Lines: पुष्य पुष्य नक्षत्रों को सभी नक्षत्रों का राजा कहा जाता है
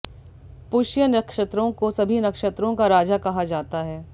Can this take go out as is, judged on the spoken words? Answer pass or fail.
fail